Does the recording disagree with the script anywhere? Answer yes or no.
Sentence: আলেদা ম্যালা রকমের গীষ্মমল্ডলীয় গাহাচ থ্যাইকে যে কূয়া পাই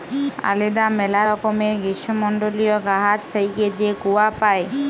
no